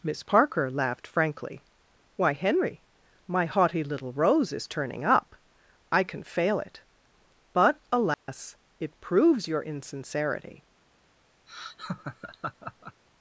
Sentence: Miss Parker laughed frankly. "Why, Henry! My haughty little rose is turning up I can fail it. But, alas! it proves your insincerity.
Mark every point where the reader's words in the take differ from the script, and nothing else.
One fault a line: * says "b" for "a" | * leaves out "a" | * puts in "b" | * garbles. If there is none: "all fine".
all fine